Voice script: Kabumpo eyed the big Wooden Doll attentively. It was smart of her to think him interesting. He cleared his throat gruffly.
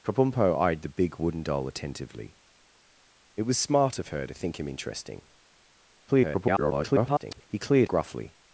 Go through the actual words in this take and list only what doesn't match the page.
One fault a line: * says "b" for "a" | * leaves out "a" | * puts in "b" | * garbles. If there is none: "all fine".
* garbles
* leaves out "his throat"